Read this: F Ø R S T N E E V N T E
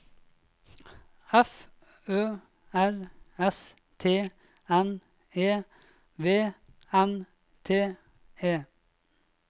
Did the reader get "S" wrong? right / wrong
right